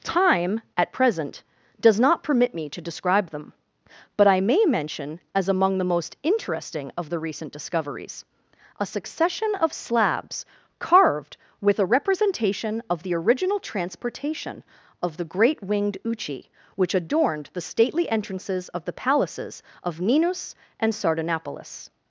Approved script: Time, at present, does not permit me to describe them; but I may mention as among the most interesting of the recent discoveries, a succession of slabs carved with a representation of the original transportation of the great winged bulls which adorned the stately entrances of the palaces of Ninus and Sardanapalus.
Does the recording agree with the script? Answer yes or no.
no